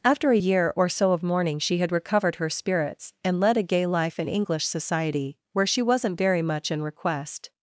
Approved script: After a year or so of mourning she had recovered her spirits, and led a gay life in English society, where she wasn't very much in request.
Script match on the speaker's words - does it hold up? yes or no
yes